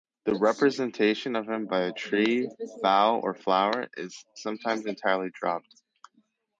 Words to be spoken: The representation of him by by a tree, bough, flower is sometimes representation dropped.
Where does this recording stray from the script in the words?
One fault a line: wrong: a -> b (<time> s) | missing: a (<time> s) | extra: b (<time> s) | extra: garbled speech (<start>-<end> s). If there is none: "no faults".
missing: by (1.8 s)
extra: or (3.2 s)
wrong: representation -> entirely (4.8 s)